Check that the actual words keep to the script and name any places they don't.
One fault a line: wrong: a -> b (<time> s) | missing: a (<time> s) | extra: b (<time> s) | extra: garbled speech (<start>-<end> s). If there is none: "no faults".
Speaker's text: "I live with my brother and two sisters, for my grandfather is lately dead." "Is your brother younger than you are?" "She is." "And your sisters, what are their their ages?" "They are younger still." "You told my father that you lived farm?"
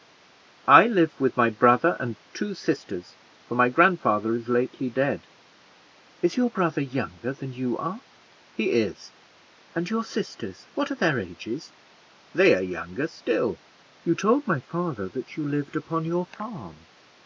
wrong: She -> He (8.5 s)
missing: their (11.2 s)
extra: upon your (15.8 s)